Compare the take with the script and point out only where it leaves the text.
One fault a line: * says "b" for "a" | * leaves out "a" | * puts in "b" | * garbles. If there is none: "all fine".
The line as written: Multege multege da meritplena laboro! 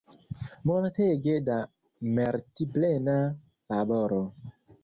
* leaves out "multege"